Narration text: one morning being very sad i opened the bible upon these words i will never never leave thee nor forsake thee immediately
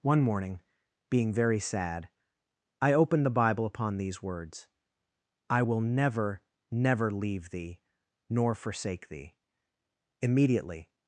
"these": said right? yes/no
yes